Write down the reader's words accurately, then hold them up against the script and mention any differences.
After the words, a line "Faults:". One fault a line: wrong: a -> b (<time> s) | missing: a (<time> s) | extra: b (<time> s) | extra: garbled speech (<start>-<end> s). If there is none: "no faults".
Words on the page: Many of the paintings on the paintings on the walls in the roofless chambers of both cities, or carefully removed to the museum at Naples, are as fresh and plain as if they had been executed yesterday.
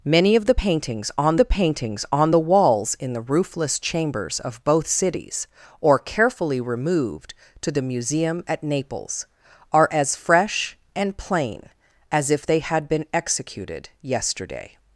Many of the paintings on the paintings on the walls in the roofless chambers of both cities, or carefully removed to the museum at Naples, are as fresh and plain as if they had been executed yesterday.
Faults:
no faults